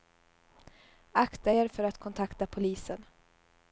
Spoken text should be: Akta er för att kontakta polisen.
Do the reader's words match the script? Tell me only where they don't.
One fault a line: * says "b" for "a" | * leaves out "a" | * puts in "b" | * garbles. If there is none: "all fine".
all fine